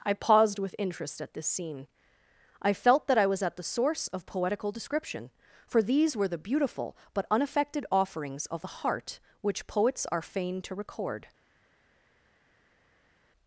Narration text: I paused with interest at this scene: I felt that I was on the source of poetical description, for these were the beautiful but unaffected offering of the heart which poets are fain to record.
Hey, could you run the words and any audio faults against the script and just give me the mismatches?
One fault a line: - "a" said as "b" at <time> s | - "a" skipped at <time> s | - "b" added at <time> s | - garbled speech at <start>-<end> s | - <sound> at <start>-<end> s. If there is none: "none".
- "on" said as "at" at 3.4 s
- "offering" said as "offerings" at 7.9 s